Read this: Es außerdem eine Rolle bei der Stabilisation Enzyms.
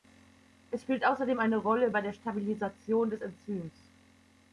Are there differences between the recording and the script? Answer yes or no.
yes